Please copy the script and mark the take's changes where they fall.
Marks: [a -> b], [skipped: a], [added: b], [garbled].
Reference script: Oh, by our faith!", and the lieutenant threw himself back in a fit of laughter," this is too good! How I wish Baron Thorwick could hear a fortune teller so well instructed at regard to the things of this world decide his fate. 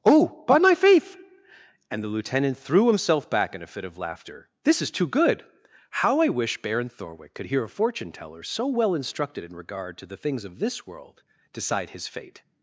Oh, by [our -> my] faith!", and the lieutenant threw himself back in a fit of laughter," this is too good! How I wish Baron Thorwick could hear a fortune teller so well instructed [at -> in] regard to the things of this world decide his fate.